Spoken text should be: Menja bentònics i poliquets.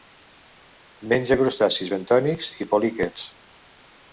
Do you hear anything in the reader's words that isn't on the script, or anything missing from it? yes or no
yes